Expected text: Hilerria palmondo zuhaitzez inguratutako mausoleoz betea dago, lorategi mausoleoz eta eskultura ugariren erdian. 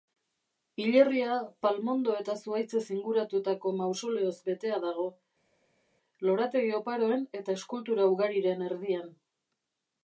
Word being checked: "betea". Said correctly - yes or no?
yes